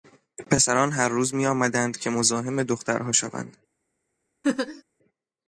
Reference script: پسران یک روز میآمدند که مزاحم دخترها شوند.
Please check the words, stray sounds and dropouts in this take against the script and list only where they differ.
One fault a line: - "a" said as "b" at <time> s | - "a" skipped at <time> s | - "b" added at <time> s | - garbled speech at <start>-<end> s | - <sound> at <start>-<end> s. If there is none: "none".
- "یک" said as "هر" at 0.9 s
- laugh at 4.4-4.8 s